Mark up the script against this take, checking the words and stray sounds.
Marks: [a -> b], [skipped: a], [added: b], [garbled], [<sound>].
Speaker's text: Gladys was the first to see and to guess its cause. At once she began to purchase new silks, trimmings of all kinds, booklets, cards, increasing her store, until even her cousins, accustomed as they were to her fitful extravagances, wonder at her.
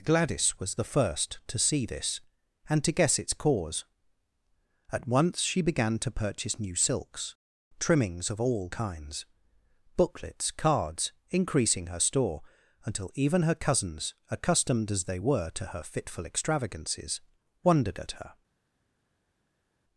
Gladys was the first to see [added: this] and to guess its cause. At once she began to purchase new silks, trimmings of all kinds, booklets, cards, increasing her store, until even her cousins, accustomed as they were to her fitful extravagances, [wonder -> wondered] at her.